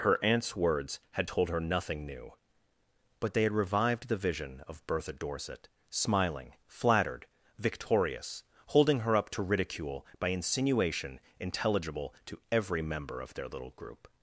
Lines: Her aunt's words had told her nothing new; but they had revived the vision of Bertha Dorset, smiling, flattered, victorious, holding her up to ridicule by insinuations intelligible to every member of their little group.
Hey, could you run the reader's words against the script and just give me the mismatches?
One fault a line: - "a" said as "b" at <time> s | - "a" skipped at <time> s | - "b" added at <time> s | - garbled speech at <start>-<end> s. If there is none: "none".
- "insinuations" said as "insinuation" at 10.3 s